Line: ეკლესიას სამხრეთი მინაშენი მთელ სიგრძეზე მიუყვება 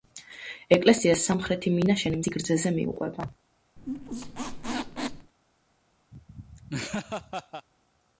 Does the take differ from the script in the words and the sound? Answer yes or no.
yes